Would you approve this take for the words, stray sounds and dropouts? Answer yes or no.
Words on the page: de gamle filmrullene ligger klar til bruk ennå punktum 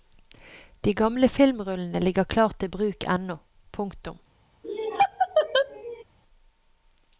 no